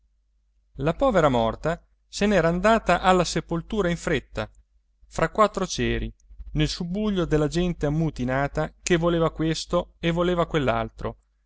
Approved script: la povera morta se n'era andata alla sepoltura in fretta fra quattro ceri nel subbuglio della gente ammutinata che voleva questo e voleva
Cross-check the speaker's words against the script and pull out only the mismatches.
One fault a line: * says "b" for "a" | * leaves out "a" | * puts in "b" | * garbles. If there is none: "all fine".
all fine